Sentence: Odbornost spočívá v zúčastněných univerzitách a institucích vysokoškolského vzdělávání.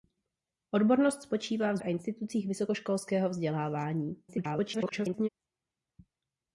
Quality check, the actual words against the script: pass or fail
fail